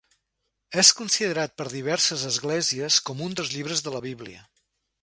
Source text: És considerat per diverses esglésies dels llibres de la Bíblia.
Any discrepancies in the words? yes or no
yes